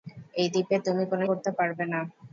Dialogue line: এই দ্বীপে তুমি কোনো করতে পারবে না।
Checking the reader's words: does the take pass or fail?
pass